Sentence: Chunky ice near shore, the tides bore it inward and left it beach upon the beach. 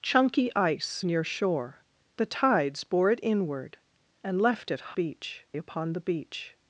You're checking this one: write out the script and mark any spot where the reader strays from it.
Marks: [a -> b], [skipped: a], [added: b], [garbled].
Chunky ice near shore, the tides bore it inward and left it beach upon the beach.